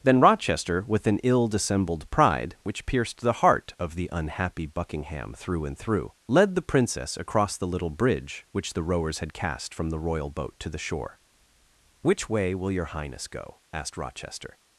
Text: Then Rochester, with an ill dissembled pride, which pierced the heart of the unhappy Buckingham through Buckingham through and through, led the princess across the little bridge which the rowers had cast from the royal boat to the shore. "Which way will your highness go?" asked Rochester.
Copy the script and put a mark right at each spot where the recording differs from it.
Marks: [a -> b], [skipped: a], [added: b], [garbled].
Then Rochester, with an ill dissembled pride, which pierced the heart of the unhappy Buckingham through [skipped: Buckingham through] and through, led the princess across the little bridge which the rowers had cast from the royal boat to the shore. "Which way will your highness go?" asked Rochester.